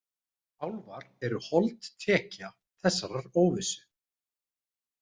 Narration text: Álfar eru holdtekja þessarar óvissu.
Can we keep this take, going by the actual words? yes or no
yes